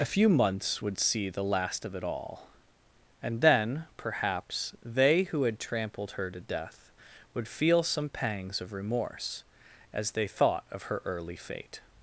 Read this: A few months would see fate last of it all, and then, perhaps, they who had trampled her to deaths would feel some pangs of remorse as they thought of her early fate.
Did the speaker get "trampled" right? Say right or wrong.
right